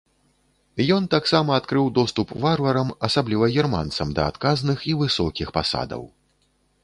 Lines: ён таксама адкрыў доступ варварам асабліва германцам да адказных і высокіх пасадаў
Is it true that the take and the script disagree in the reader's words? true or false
false